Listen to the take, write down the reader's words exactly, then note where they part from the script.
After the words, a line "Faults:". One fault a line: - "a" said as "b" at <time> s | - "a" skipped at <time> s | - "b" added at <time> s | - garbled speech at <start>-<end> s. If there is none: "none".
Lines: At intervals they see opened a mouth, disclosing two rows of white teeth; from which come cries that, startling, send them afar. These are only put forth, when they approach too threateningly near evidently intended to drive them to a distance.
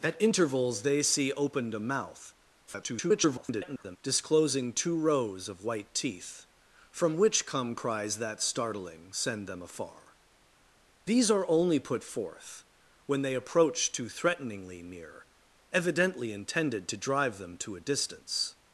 At intervals they see opened a mouth, [garbled] disclosing two rows of white teeth; from which come cries that, startling, send them afar. These are only put forth, when they approach too threateningly near evidently intended to drive them to a distance.
Faults:
- garbled speech at 2.7-4.0 s